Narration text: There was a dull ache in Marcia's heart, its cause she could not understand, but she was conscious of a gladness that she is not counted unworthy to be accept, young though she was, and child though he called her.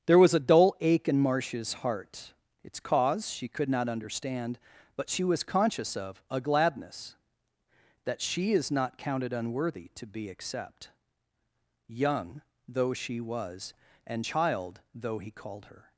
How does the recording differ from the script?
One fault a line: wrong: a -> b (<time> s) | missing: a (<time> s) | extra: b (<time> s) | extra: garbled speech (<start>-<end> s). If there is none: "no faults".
no faults